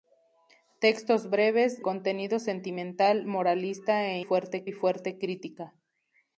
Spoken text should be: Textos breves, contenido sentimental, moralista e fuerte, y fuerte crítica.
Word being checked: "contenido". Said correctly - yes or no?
yes